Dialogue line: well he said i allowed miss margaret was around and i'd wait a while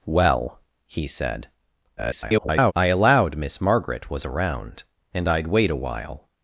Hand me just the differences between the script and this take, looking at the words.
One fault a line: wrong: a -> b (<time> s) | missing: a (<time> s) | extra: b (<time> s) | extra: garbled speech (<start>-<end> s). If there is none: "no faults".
extra: garbled speech (2.0-2.7 s)